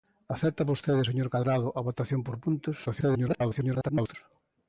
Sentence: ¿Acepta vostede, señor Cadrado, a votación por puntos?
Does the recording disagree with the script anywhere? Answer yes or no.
yes